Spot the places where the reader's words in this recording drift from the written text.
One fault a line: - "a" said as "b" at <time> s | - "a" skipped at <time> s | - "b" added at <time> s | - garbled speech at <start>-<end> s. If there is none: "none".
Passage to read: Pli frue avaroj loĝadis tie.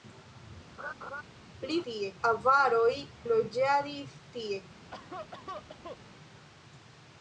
- "frue" said as "tie" at 1.9 s